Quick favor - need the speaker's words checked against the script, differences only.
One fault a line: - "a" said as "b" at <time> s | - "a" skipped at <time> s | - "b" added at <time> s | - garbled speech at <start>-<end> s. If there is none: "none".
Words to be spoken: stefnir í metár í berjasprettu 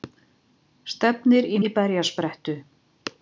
- "metár" skipped at 1.6 s